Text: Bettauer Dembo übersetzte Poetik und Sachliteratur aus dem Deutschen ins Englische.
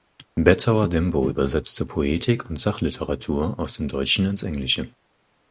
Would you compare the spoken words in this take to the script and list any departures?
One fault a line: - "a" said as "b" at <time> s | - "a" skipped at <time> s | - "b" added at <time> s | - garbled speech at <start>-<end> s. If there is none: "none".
none